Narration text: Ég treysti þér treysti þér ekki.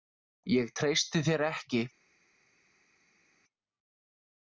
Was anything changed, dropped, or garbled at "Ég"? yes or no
no